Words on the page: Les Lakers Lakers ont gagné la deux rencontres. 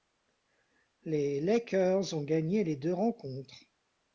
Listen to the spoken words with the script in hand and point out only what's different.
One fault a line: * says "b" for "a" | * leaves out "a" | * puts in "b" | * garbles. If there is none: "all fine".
* leaves out "Lakers"
* says "les" for "la"